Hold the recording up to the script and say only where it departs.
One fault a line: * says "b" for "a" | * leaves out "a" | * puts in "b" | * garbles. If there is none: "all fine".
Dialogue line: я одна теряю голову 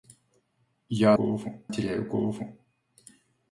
* says "голову" for "одна"